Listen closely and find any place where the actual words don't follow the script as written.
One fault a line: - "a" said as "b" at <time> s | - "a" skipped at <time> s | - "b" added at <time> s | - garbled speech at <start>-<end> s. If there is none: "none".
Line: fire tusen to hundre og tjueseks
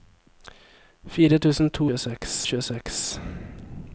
- "hundre" said as "tjueseks" at 1.9 s